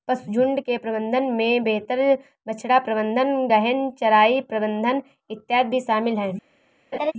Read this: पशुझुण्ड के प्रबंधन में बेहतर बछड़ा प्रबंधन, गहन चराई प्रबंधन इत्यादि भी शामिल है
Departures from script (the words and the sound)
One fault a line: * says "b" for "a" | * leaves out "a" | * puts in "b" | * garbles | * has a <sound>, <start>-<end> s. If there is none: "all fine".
* has a laugh, 6.9-7.1 s